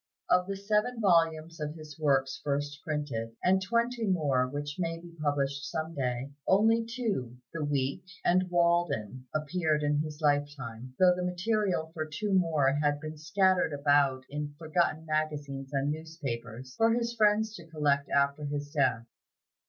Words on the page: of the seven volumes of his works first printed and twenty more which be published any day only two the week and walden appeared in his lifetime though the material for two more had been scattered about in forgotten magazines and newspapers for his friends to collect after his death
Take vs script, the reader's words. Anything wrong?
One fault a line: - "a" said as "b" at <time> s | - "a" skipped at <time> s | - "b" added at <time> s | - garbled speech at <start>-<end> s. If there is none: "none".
- "may" added at 4.8 s
- "any" said as "some" at 5.7 s